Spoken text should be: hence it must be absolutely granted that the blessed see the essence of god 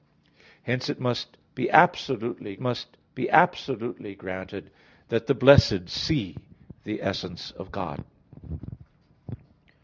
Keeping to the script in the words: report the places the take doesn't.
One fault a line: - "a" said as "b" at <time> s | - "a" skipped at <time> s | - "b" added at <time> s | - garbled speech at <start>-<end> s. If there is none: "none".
- "must be absolutely" added at 2.6 s